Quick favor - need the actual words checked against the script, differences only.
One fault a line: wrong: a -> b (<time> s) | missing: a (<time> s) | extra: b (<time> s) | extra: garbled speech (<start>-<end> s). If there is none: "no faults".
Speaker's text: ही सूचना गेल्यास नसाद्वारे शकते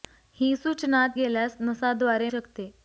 no faults